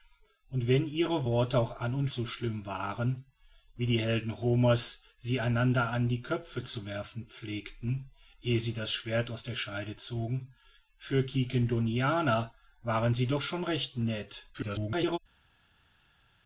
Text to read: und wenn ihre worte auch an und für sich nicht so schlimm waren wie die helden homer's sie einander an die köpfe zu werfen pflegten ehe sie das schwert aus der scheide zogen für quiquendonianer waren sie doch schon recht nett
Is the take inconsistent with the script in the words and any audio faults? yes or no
yes